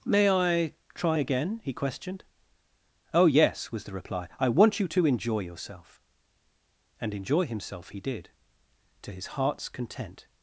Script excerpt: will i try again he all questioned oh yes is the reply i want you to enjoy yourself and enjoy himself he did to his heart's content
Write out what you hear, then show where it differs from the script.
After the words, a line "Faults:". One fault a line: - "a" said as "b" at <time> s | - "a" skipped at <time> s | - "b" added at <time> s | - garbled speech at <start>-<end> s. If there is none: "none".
may i try again he questioned oh yes was the reply i want you to enjoy yourself and enjoy himself he did to his heart's content
Faults:
- "will" said as "may" at 0.0 s
- "all" skipped at 1.7 s
- "is" said as "was" at 3.7 s